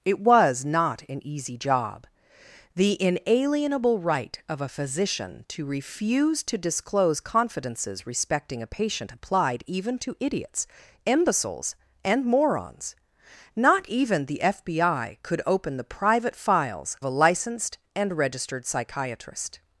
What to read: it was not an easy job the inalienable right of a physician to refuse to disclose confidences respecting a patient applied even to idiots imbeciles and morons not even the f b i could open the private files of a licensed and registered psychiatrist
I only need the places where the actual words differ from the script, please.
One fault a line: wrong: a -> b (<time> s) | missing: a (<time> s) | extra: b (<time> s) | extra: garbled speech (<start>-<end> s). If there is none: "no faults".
missing: of (16.9 s)